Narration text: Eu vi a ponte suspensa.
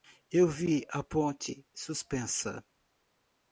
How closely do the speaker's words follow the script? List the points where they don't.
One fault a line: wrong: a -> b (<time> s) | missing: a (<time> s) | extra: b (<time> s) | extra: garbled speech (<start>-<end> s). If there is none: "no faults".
no faults